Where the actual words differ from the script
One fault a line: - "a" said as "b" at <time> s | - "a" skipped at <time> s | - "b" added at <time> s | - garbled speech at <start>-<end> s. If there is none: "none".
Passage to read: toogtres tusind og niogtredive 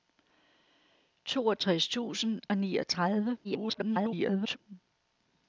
- garbled speech at 3.4-4.6 s